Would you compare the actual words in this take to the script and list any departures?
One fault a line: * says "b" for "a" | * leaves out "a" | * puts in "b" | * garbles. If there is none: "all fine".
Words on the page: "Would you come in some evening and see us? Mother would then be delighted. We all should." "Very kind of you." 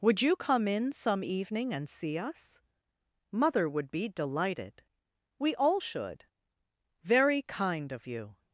* leaves out "then"